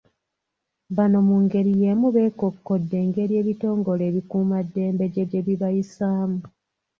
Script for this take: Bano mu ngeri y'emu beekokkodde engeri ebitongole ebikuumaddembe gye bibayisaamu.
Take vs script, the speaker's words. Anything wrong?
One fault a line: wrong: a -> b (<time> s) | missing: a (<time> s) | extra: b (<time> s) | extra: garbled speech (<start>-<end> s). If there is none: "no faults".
extra: gye (5.3 s)